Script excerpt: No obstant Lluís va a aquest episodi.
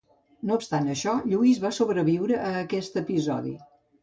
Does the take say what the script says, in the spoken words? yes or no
no